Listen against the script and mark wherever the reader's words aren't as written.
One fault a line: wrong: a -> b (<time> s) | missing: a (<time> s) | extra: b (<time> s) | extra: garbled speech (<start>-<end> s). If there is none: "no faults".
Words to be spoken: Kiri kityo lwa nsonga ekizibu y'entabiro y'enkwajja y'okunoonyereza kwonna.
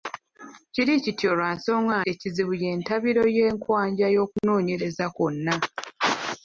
no faults